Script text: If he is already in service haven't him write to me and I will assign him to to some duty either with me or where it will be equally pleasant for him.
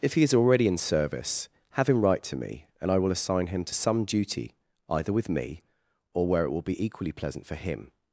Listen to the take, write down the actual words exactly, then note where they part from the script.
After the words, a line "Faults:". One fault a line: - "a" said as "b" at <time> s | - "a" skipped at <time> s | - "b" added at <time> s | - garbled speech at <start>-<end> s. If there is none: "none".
If he is already in service have him write to me and I will assign him to some duty either with me or where it will be equally pleasant for him.
Faults:
- "haven't" said as "have" at 1.8 s
- "to" skipped at 3.8 s